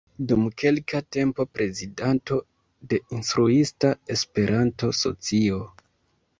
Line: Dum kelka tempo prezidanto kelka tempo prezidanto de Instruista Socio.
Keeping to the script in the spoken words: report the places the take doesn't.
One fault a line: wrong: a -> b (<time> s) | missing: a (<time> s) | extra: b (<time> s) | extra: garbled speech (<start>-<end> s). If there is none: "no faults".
missing: kelka tempo prezidanto (2.4 s)
extra: Esperanto (4.2 s)